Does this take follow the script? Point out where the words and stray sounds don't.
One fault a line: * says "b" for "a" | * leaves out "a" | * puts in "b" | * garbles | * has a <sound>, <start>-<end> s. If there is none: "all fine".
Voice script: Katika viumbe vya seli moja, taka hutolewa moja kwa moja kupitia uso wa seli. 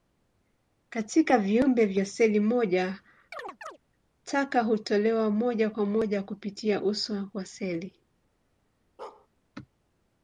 * has a chirp, 3.3-3.8 s
* has a bark, 9.0-9.3 s